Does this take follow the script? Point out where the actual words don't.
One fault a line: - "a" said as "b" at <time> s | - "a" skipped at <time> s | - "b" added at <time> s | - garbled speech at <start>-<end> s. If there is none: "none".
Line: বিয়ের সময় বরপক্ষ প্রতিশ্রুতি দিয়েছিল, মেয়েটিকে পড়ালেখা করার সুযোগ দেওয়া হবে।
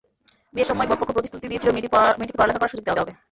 - "দেওয়া" added at 2.9 s